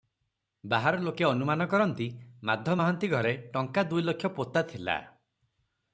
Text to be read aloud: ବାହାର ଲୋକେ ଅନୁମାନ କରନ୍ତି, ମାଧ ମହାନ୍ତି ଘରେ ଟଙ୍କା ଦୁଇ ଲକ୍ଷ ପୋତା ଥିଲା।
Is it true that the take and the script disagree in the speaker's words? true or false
false